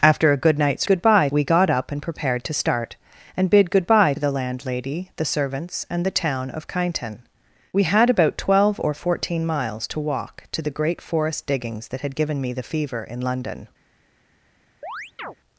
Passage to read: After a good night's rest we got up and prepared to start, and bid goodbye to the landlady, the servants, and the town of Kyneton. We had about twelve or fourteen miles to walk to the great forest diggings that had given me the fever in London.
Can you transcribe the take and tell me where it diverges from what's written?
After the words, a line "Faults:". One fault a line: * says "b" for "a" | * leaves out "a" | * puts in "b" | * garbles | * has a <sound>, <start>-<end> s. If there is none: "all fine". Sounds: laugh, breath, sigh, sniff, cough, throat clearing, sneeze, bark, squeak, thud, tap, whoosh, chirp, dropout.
After a good night's goodbye we got up and prepared to start, and bid goodbye the landlady, the servants, and the town of Kyneton. We had about twelve or fourteen miles to walk to the great forest diggings that had given me the fever in London.
Faults:
* says "goodbye" for "rest"
* leaves out "to"
* has a chirp, 14.8-15.4 s